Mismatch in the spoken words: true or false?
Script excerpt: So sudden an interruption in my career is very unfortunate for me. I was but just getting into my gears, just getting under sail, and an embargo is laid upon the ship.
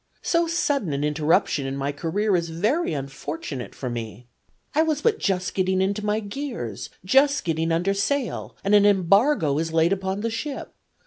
false